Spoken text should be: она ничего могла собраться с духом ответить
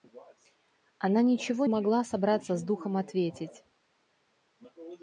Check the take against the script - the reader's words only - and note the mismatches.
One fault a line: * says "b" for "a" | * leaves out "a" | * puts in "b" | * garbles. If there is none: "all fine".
all fine